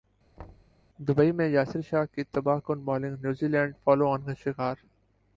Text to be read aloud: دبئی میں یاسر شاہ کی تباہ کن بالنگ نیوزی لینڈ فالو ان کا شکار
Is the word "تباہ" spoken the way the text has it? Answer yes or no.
yes